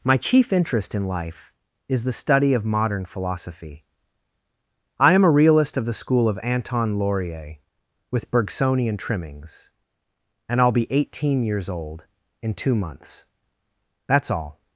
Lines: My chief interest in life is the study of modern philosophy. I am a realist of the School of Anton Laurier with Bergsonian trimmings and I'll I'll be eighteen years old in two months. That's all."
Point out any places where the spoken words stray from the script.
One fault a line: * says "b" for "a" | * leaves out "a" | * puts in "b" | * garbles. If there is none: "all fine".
* leaves out "I'll"